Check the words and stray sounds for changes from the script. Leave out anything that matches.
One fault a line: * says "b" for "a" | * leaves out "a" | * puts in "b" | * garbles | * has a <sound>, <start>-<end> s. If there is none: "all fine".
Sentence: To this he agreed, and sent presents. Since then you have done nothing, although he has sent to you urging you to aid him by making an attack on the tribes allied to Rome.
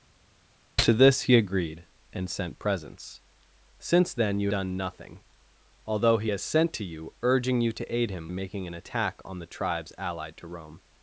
* leaves out "have"
* leaves out "by"